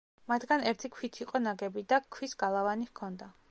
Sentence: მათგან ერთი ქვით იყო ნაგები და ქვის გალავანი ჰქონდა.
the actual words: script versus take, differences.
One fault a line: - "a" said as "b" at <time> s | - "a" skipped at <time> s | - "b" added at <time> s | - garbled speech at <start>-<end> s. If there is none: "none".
none